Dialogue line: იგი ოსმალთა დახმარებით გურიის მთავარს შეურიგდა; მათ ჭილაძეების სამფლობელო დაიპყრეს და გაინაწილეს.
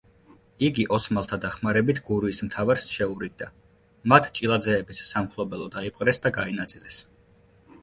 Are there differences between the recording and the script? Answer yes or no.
no